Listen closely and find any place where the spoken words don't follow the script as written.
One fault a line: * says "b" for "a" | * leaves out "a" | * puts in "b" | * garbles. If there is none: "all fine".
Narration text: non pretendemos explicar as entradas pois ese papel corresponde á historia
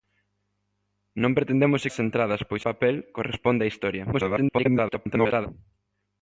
* leaves out "explicar"
* leaves out "ese"
* garbles